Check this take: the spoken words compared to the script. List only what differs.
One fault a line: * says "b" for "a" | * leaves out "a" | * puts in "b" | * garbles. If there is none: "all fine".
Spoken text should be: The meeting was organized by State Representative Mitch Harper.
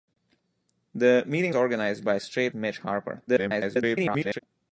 * leaves out "was"
* leaves out "Representative"
* garbles